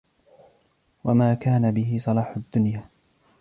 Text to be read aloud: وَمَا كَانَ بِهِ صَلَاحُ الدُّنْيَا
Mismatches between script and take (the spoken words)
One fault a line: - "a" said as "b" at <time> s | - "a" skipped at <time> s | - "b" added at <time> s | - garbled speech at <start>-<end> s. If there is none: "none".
none